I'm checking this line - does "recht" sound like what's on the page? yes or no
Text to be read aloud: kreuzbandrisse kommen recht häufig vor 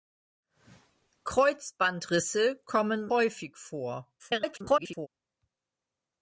no